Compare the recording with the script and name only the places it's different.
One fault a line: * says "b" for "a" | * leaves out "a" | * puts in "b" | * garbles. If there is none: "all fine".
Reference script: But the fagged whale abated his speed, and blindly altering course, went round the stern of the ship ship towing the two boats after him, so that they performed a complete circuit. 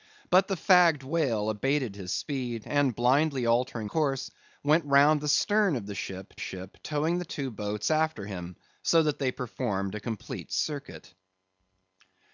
all fine